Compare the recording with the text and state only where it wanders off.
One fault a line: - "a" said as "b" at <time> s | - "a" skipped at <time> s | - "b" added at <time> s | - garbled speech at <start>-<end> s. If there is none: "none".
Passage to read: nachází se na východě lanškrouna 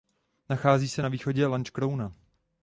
none